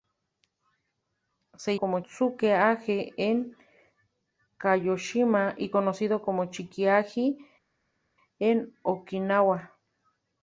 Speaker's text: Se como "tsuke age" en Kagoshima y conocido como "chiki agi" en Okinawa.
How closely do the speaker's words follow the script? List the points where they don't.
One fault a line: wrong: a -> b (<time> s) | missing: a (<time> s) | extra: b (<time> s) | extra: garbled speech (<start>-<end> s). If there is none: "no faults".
no faults